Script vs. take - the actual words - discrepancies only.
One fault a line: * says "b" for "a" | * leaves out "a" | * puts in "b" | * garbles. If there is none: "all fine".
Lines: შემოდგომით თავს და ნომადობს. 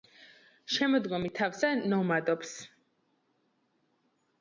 all fine